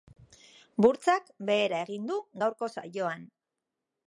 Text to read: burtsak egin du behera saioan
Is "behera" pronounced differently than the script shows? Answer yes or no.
yes